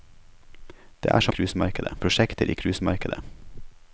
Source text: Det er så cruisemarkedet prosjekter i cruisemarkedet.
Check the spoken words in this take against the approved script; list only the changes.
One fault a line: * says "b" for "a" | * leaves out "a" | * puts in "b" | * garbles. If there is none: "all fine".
all fine